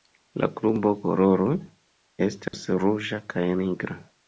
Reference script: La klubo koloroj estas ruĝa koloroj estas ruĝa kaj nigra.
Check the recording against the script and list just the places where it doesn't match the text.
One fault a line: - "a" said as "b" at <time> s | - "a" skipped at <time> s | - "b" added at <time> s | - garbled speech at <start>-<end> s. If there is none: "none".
- "koloroj estas ruĝa" skipped at 3.2 s